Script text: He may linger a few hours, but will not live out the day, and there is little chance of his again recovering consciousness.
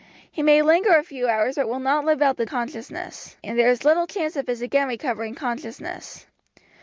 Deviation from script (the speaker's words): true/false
true